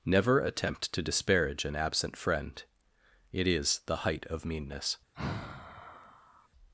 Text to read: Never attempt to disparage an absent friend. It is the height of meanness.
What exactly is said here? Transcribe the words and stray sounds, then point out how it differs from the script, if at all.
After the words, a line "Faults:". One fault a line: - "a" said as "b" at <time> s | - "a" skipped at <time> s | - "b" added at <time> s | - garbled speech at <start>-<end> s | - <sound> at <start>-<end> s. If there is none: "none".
Never attempt to disparage an absent friend. It is the height of meanness.
Faults:
- sigh at 5.1-6.5 s